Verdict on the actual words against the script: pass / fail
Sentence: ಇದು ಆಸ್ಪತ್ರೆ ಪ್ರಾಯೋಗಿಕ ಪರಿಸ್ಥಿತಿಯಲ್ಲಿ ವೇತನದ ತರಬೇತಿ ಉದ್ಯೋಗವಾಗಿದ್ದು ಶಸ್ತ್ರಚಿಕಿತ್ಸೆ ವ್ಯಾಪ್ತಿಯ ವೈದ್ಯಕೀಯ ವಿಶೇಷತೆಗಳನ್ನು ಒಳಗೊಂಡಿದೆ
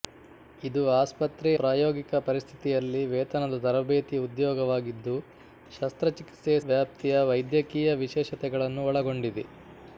pass